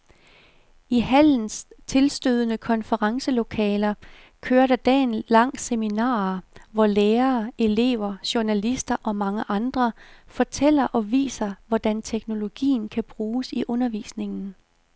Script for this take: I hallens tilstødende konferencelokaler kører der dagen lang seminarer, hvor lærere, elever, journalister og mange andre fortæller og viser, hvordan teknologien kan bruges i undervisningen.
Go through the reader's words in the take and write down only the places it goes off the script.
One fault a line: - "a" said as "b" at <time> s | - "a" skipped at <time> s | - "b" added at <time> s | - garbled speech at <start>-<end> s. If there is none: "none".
none